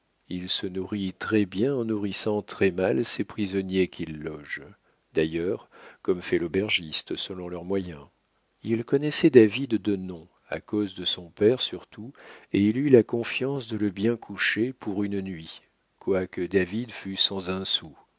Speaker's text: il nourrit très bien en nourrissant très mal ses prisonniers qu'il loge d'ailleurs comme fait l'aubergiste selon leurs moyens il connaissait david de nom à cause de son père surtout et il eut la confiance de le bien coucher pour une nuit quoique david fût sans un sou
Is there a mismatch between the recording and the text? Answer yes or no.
yes